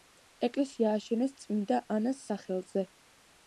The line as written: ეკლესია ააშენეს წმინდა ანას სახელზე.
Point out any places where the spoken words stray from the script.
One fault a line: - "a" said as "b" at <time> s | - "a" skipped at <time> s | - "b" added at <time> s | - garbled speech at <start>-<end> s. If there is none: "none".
none